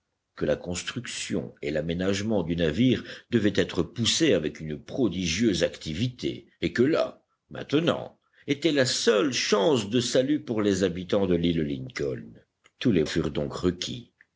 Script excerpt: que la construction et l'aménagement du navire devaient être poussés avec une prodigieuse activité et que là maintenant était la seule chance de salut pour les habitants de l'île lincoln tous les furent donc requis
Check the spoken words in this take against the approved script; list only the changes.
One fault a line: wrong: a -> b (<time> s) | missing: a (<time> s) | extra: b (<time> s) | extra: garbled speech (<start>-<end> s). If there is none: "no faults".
no faults